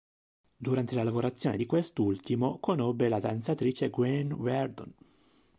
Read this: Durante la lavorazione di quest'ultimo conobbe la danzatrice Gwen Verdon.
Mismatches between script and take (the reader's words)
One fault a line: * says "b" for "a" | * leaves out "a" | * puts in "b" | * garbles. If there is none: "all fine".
all fine